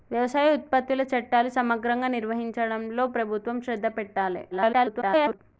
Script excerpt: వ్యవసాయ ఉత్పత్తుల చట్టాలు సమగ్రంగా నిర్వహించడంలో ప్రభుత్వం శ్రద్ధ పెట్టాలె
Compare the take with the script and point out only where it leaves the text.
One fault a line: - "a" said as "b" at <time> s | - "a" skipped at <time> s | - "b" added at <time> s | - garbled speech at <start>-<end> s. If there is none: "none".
- garbled speech at 4.5-5.4 s